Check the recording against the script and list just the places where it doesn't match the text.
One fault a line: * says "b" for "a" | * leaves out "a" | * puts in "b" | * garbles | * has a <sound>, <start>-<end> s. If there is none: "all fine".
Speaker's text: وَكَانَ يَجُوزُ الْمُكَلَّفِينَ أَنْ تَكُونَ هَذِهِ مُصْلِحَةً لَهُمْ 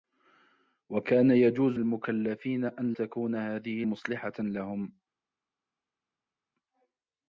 all fine